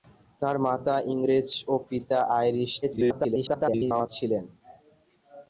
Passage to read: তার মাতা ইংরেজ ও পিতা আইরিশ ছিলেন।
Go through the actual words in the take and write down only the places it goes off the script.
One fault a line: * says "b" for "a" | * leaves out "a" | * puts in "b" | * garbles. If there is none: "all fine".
* garbles